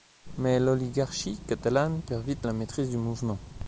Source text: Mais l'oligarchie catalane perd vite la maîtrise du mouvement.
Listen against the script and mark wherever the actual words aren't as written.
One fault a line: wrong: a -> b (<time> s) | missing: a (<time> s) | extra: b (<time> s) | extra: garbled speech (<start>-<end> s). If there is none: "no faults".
no faults